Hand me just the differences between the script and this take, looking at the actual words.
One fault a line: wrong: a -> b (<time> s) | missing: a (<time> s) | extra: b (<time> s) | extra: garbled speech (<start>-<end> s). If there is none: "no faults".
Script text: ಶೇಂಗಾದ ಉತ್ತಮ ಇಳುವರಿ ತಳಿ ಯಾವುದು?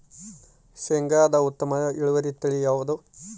no faults